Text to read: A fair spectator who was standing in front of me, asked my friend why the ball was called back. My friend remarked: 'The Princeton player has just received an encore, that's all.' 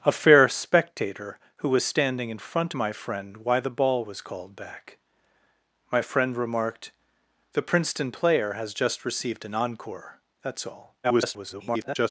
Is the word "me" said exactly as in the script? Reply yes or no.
no